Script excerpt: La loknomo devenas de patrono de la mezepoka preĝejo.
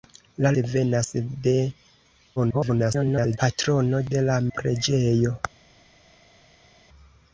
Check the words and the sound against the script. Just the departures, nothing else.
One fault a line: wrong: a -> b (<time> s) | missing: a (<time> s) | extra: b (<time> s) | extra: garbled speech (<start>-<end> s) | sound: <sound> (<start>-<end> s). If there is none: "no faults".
missing: loknomo (0.5 s)
extra: garbled speech (2.4-3.4 s)
missing: mezepoka (4.4 s)